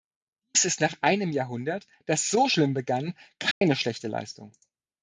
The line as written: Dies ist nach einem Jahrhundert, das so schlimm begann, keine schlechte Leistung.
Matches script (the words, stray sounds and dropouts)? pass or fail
fail